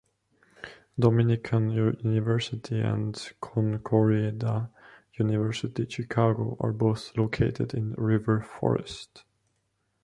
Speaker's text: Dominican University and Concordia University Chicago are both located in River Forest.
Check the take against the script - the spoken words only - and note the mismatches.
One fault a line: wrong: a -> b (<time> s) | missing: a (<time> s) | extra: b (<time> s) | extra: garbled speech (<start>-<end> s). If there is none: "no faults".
no faults